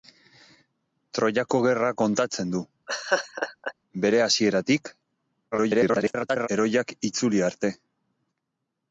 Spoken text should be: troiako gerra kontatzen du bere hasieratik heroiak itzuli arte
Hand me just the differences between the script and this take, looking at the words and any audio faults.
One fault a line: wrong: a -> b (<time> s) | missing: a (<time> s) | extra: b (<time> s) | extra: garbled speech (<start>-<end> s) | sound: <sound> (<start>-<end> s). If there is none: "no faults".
sound: laugh (2.9-3.7 s)
extra: garbled speech (5.5-6.5 s)